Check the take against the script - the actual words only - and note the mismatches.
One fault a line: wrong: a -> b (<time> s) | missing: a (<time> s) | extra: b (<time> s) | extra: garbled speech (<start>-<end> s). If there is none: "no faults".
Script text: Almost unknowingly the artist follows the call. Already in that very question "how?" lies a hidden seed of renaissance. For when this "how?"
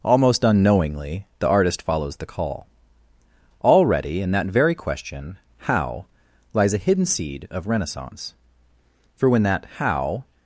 wrong: this -> that (9.4 s)